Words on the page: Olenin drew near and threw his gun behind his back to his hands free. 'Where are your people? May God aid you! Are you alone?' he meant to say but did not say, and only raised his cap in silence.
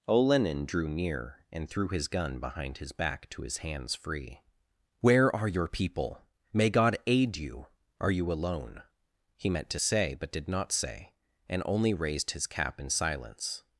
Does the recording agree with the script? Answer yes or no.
yes